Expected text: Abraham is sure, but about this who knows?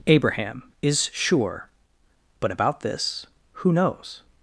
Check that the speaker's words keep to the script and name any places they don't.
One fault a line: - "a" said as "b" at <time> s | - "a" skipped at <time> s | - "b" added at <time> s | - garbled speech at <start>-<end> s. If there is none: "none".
none